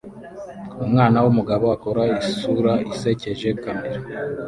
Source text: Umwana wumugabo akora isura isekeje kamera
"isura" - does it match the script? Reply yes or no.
yes